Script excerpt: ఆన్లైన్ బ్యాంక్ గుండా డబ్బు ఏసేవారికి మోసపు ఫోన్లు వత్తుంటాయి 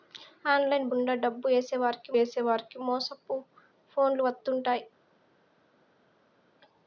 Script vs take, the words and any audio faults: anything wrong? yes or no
yes